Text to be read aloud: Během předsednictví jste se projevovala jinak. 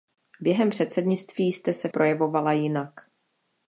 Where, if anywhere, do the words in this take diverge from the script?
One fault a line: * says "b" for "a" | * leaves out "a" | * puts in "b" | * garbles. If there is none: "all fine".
all fine